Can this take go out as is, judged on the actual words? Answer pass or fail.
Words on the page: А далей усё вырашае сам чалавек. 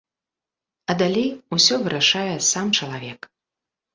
pass